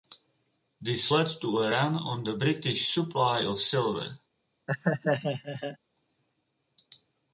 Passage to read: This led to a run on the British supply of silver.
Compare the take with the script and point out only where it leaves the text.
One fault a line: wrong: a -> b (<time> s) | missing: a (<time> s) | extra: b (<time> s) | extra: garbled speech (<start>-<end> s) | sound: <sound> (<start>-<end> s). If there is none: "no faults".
sound: laugh (4.7-5.8 s)